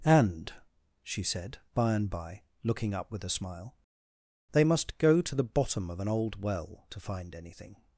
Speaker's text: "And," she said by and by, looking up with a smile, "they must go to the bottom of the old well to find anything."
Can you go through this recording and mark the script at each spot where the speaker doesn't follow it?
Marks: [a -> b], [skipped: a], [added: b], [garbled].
"And," she said by and by, looking up with a smile, "they must go to the bottom of [the -> an] old well to find anything."